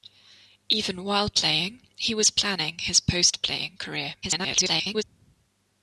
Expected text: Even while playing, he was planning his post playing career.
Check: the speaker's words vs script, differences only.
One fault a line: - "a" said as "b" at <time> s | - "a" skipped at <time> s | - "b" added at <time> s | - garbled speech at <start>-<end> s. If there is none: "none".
- garbled speech at 4.2-5.0 s